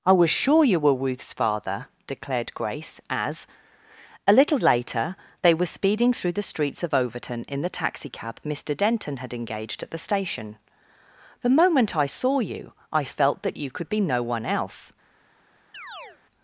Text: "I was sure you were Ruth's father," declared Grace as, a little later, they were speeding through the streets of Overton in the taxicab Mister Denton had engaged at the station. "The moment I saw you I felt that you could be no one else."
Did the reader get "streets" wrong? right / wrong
right